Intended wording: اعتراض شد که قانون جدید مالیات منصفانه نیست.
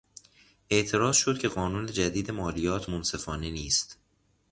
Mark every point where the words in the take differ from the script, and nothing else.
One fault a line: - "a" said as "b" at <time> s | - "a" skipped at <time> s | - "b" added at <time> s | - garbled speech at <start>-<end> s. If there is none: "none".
none